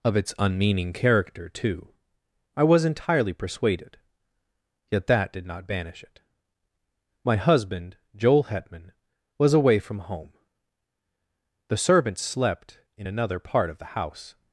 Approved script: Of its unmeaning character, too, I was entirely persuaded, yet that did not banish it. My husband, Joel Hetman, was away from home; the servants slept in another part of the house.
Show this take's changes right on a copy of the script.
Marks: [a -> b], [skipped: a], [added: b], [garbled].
Of its unmeaning character, too, I was entirely persuaded, yet that did not banish it. My husband, Joel Hetman, was away from home; the servants slept in another part of the house.